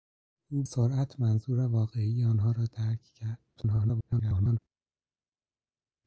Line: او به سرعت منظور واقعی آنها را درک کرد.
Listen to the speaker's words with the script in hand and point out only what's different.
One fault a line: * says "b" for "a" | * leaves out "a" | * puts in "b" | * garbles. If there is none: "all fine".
* leaves out "به"
* garbles